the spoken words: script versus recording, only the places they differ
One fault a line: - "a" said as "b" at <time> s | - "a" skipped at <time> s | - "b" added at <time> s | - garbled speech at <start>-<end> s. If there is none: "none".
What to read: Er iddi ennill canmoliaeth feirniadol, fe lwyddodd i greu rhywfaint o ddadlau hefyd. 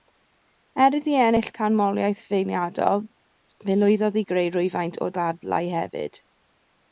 none